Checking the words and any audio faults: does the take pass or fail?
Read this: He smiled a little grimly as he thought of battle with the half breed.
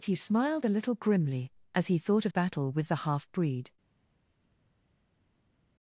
pass